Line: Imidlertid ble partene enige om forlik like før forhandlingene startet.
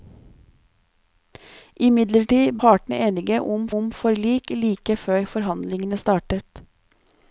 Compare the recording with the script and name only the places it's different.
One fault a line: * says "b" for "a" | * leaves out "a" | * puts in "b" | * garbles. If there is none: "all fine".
* leaves out "ble"
* puts in "om"